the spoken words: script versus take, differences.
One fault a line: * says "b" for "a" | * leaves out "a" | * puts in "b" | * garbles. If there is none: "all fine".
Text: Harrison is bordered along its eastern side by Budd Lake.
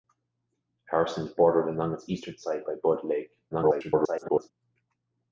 * garbles